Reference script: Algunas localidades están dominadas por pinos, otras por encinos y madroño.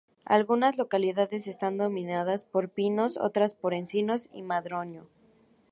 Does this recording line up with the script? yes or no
yes